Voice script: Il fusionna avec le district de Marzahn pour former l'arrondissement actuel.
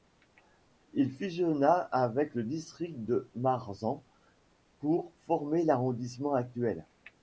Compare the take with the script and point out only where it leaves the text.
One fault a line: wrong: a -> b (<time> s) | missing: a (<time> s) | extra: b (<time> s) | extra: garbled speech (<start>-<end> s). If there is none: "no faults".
no faults